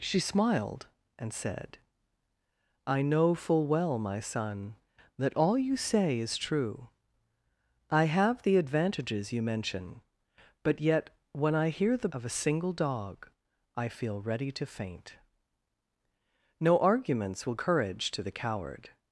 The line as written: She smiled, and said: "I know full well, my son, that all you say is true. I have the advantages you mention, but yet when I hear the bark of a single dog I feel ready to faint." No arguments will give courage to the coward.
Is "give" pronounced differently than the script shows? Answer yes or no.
yes